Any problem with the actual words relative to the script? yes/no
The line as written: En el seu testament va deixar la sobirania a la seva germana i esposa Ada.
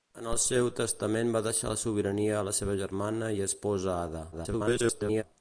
yes